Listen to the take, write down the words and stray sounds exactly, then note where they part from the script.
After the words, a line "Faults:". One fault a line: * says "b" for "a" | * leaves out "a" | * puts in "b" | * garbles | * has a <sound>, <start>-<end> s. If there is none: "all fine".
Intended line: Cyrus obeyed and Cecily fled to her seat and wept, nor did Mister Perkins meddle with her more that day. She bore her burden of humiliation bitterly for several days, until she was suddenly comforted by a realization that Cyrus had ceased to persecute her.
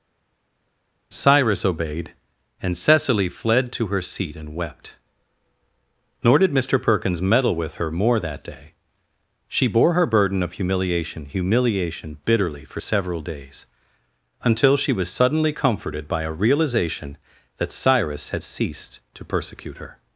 Cyrus obeyed and Cecily fled to her seat and wept, nor did Mister Perkins meddle with her more that day. She bore her burden of humiliation humiliation bitterly for several days, until she was suddenly comforted by a realization that Cyrus had ceased to persecute her.
Faults:
* puts in "humiliation"